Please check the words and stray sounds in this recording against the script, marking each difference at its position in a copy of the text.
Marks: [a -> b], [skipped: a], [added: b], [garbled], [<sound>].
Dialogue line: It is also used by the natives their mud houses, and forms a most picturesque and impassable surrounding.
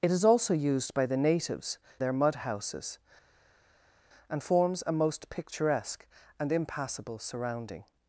It is also used by the natives their mud houses, and forms a most picturesque and impassable surrounding.